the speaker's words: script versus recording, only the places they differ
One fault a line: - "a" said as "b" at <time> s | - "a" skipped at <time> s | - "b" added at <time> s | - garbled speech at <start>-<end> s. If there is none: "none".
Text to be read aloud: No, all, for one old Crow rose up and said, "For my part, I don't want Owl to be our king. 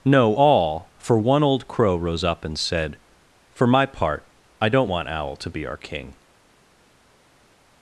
none